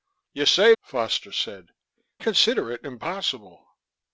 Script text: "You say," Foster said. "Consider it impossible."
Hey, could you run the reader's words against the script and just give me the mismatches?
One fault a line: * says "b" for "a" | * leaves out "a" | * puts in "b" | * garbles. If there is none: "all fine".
all fine